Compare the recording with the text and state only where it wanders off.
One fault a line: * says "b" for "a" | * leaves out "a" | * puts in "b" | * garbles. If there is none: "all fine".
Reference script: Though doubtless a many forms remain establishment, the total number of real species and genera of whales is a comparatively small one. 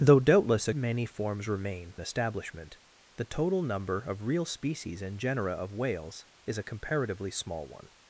all fine